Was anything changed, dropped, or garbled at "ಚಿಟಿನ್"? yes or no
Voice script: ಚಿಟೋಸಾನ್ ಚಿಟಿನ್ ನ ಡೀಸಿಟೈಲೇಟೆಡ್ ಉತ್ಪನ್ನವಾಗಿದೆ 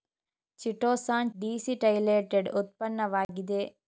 yes